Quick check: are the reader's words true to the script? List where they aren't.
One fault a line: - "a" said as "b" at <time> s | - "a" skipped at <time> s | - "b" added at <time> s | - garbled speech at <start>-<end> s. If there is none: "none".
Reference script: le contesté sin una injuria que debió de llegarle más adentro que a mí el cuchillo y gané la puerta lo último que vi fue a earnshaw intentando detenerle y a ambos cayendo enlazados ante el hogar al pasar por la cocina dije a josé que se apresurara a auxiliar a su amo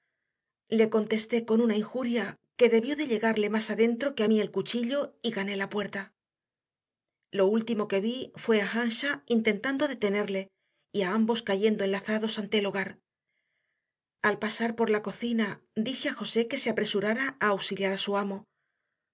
- "sin" said as "con" at 1.5 s